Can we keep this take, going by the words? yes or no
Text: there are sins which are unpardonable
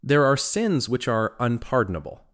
yes